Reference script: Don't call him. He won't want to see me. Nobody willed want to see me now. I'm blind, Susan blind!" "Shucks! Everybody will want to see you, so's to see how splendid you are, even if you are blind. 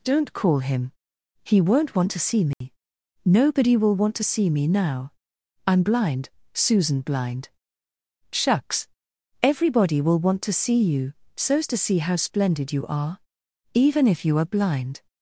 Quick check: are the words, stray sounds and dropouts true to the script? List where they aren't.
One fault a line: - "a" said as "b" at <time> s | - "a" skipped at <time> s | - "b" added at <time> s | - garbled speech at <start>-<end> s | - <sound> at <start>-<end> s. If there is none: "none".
- dropout at 2.5-2.6 s
- "willed" said as "will" at 3.8 s